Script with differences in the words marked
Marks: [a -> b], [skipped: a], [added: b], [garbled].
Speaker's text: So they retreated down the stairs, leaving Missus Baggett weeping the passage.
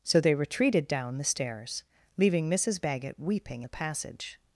So they retreated down the stairs, leaving Missus Baggett weeping the passage.